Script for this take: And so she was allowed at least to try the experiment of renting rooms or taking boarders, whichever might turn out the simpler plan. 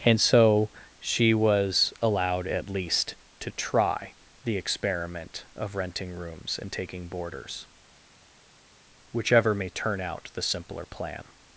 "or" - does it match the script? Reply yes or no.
no